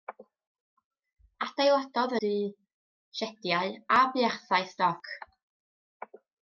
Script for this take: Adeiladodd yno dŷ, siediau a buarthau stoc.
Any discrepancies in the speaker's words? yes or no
yes